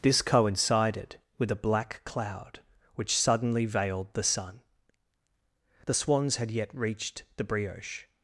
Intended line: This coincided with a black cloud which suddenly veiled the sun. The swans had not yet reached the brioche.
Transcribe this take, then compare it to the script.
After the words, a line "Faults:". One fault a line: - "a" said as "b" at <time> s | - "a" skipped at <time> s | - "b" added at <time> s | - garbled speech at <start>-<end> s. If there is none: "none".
This coincided with a black cloud which suddenly veiled the sun. The swans had yet reached the brioche.
Faults:
- "not" skipped at 6.5 s